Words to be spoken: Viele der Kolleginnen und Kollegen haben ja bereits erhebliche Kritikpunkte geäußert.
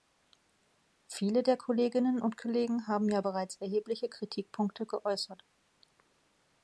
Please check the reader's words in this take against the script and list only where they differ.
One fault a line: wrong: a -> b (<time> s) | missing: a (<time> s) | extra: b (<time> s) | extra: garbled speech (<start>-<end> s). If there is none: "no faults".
no faults